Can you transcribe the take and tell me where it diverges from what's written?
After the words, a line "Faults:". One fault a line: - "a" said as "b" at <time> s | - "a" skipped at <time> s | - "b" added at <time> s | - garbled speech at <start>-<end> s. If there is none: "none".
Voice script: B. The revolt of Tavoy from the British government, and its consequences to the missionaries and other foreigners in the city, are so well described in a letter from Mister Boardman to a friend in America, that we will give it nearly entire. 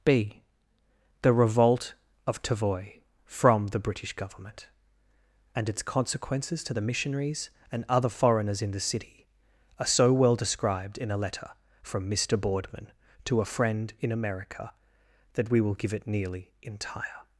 B. The revolt of Tavoy from the British government, and its consequences to the missionaries and other foreigners in the city, are so well described in a letter from Mister Boardman to a friend in America, that we will give it nearly entire.
Faults:
none